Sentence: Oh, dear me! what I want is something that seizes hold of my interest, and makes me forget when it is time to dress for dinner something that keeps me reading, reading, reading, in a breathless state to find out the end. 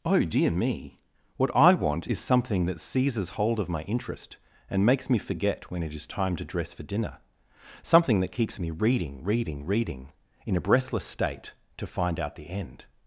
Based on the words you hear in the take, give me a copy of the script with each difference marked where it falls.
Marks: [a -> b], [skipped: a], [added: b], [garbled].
Oh, dear me! what I want is something that seizes hold of my interest, and makes me forget when it is time to dress for dinner something that keeps me reading, reading, reading, in a breathless state to find out the end.